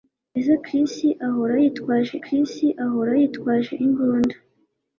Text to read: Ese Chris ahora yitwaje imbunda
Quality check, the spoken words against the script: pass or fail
fail